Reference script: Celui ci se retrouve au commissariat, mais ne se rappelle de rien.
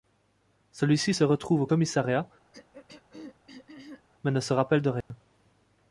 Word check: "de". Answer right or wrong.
right